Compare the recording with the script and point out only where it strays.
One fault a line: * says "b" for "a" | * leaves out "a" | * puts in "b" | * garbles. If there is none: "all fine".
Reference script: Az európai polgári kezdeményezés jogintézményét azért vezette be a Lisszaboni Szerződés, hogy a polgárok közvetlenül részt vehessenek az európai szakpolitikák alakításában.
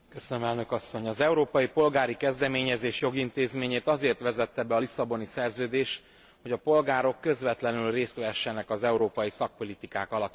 all fine